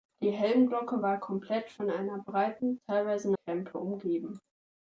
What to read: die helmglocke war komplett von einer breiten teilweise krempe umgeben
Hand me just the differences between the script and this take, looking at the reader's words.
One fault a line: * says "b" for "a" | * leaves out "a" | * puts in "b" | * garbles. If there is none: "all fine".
all fine